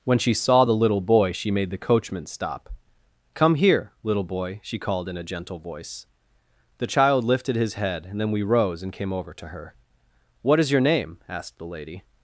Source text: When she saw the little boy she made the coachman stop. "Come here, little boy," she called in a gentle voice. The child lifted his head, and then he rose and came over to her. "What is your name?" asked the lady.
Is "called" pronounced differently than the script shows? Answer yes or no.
no